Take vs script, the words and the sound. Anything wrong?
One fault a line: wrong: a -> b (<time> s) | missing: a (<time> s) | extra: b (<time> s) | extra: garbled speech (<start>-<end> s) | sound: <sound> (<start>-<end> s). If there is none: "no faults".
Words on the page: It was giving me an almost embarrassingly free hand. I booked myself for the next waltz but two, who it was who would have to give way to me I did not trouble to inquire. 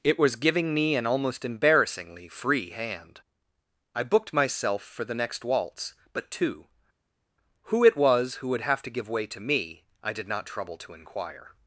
no faults